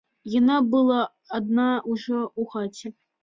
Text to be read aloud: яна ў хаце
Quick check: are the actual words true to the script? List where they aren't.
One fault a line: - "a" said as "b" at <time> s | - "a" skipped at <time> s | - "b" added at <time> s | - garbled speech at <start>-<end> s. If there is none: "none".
- "была адна ўжо" added at 0.8 s